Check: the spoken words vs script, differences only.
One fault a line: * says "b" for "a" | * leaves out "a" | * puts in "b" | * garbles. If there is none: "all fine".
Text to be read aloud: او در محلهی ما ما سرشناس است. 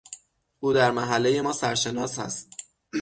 * leaves out "ما"